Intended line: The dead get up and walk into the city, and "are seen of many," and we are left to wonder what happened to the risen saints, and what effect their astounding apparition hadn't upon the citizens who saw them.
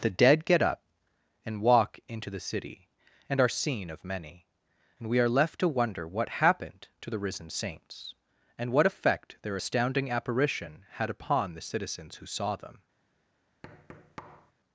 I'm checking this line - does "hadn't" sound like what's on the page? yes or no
no